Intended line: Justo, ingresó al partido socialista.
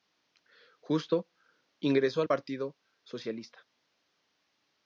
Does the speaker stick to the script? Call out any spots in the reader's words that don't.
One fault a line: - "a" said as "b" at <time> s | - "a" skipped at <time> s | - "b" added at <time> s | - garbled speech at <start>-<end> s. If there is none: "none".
none